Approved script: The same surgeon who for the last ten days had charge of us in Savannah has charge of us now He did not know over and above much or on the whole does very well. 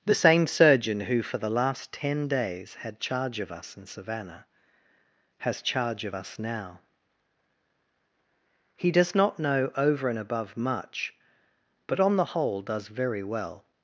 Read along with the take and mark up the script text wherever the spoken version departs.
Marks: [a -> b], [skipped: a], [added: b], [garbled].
The same surgeon who for the last ten days had charge of us in Savannah has charge of us now He [did -> does] not know over and above much [or -> but] on the whole does very well.